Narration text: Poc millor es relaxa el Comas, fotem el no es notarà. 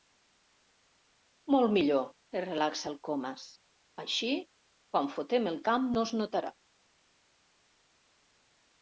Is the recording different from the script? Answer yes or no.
yes